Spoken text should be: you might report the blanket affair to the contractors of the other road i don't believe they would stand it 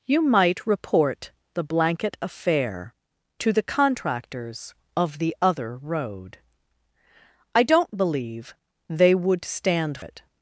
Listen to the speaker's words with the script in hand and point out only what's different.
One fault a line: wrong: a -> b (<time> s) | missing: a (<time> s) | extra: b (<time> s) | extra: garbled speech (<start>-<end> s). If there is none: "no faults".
no faults